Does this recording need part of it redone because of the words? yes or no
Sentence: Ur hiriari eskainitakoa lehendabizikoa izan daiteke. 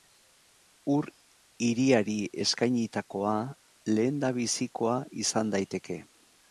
no